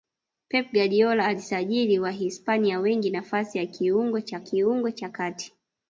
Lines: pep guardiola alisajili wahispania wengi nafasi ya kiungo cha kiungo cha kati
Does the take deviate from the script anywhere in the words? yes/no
no